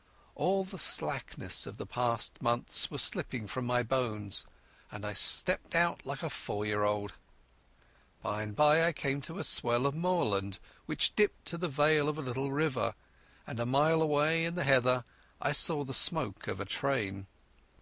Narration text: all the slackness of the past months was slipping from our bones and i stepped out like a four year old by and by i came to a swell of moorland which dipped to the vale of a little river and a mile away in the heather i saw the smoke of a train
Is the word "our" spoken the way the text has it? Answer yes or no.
no